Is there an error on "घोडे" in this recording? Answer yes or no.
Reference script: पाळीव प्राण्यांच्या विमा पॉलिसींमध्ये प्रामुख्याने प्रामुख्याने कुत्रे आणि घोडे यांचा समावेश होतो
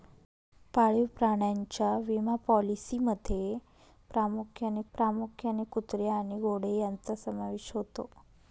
no